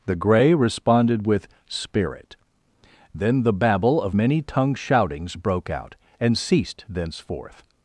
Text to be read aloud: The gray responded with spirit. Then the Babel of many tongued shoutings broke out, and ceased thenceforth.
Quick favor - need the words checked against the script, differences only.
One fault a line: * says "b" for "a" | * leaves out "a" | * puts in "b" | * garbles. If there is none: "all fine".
all fine